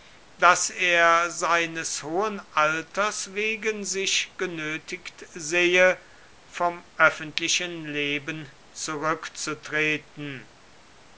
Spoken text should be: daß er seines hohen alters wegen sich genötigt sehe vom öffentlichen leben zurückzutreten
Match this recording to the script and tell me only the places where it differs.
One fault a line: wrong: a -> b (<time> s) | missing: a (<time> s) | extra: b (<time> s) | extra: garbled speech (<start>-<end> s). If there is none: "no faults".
no faults